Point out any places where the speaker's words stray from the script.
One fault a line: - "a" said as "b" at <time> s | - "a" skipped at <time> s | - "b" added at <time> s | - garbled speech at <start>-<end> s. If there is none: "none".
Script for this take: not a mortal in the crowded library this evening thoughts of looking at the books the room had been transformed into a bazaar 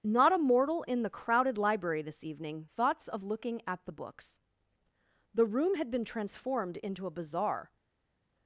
none